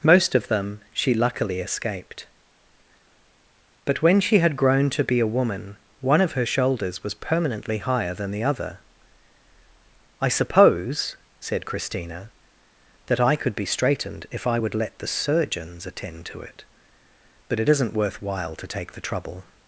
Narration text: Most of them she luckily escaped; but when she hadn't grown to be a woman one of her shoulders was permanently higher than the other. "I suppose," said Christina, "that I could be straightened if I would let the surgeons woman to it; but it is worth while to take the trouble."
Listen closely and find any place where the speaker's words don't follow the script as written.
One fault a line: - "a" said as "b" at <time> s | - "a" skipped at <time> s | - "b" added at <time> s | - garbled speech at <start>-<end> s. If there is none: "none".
- "hadn't" said as "had" at 4.4 s
- "woman" said as "attend" at 15.8 s
- "is" said as "isn't" at 17.7 s